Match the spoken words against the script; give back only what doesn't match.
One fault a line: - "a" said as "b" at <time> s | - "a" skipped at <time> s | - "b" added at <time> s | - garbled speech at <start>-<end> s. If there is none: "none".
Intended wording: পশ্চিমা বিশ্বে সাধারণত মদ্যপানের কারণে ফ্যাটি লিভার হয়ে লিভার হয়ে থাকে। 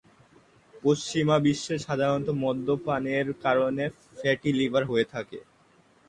- "লিভার হয়ে" skipped at 5.1 s